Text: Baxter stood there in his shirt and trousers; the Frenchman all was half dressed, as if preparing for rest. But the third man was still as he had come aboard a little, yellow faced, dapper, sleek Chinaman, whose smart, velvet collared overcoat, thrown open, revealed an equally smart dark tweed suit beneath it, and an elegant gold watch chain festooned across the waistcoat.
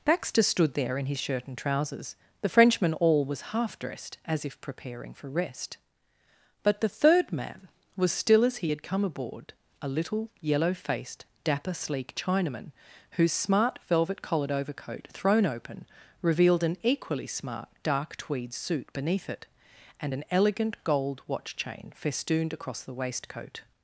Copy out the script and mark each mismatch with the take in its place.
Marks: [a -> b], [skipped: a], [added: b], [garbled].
Baxter stood there in his shirt and trousers; the Frenchman all was half dressed, as if preparing for rest. But the third man was still as he had come aboard a little, yellow faced, dapper, sleek Chinaman, whose smart, velvet collared overcoat, thrown open, revealed an equally smart dark tweed suit beneath it, and an elegant gold watch chain festooned across the waistcoat.